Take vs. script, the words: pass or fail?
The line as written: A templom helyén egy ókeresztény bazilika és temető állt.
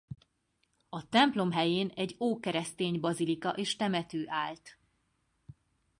pass